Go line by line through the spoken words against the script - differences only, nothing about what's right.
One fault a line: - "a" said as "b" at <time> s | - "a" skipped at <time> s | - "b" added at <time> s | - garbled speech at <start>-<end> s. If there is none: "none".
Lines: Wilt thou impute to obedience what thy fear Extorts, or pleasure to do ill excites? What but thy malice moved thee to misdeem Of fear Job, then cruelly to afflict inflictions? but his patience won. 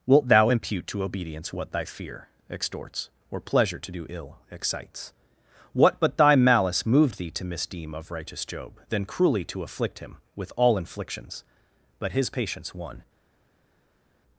- "fear" said as "righteous" at 8.1 s
- "him With all" added at 10.0 s